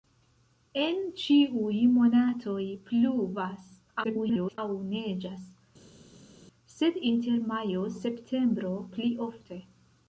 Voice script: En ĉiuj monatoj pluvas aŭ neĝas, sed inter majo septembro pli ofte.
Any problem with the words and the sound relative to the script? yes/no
yes